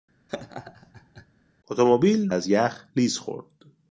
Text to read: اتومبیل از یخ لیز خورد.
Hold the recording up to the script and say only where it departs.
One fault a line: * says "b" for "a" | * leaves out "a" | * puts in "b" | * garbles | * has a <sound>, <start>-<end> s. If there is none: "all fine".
* has a laugh, 0.3-1.3 s